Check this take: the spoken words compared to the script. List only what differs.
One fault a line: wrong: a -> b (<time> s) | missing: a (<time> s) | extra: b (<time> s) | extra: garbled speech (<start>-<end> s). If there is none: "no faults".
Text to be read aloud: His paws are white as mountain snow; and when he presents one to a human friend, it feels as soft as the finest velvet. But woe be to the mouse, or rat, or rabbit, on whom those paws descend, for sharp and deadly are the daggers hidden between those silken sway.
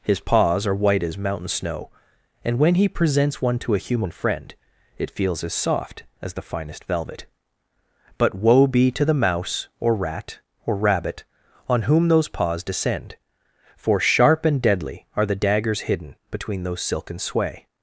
no faults